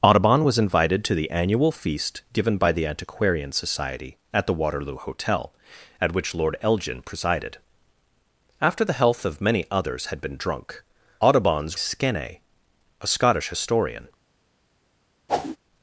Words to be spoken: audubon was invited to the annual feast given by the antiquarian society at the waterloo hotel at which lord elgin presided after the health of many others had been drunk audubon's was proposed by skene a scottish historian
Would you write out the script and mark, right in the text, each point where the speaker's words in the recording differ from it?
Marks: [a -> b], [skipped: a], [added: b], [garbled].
audubon was invited to the annual feast given by the antiquarian society at the waterloo hotel at which lord elgin presided after the health of many others had been drunk audubon's [skipped: was proposed by] skene a scottish historian